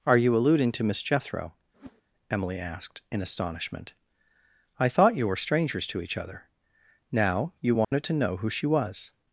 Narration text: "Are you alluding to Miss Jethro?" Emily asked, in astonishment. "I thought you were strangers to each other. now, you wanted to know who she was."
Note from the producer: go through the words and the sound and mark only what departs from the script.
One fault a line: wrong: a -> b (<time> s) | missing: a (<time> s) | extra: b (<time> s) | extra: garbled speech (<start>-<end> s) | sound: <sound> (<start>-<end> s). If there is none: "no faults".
sound: whoosh (1.7-2.0 s)
sound: dropout (7.8-7.9 s)